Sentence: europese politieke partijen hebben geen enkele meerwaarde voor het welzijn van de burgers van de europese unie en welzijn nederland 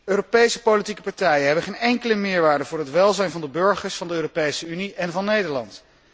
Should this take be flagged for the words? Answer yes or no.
yes